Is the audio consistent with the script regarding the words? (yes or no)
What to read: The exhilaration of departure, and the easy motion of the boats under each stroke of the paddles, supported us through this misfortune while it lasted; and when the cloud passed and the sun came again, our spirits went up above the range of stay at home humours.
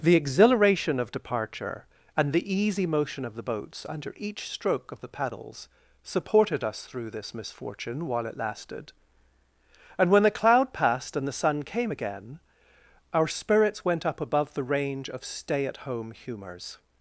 yes